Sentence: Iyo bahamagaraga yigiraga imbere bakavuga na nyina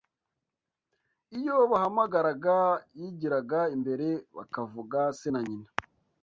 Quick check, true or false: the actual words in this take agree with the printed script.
false